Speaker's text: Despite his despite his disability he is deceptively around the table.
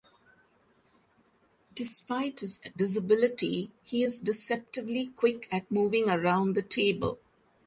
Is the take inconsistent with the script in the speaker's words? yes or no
yes